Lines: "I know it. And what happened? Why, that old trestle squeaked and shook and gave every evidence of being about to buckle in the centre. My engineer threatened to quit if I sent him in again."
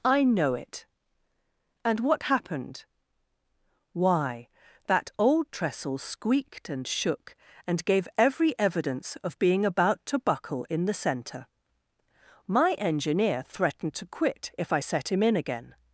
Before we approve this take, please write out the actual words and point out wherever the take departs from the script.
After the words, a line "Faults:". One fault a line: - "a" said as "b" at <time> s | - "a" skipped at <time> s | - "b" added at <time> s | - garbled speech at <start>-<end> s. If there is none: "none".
"I know it. And what happened? Why, that old trestle squeaked and shook and gave every evidence of being about to buckle in the centre. My engineer threatened to quit if I set him in again."
Faults:
- "sent" said as "set" at 14.8 s